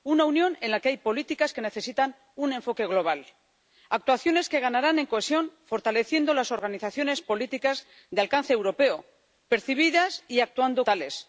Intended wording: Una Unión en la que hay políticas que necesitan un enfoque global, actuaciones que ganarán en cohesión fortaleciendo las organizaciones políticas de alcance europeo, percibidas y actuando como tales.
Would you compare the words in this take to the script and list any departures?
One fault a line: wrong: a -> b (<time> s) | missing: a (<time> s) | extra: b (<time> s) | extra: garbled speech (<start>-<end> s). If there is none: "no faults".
missing: como (10.9 s)